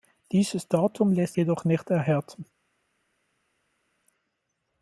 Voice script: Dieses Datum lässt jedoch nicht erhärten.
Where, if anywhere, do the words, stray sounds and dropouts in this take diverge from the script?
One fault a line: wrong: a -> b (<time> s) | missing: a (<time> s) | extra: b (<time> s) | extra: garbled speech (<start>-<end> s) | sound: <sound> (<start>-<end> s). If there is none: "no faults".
no faults